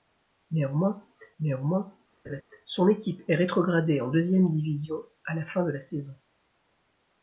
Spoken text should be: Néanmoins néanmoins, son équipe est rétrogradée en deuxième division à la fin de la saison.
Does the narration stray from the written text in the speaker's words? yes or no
no